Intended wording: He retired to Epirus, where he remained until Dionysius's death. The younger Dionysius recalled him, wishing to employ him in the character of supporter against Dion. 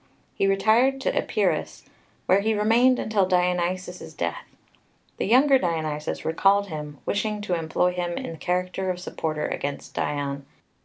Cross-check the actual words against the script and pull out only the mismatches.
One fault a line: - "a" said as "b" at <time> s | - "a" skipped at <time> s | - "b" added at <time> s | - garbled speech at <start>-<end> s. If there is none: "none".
none